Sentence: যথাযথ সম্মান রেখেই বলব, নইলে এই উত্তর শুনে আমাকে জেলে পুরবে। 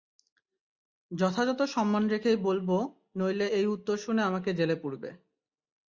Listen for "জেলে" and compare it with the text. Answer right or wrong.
right